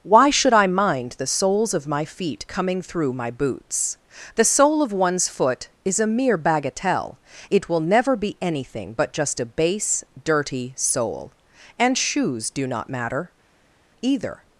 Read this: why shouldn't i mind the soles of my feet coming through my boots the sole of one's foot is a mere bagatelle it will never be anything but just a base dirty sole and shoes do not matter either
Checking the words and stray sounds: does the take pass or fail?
fail